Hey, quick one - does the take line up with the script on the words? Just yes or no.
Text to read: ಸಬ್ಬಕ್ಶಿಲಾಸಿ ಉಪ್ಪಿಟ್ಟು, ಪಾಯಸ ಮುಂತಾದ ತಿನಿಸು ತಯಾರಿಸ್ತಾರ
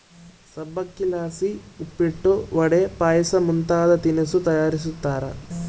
no